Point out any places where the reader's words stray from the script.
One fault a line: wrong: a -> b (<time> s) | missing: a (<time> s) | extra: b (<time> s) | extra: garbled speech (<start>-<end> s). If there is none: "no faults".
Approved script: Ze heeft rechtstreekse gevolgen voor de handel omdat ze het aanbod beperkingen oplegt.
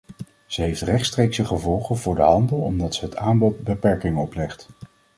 no faults